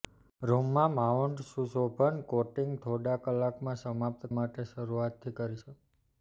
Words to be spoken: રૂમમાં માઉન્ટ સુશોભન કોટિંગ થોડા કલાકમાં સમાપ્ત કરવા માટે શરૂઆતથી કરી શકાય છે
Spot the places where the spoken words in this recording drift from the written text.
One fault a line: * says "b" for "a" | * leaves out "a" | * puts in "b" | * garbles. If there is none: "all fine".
* leaves out "કરવા"
* leaves out "શકાય"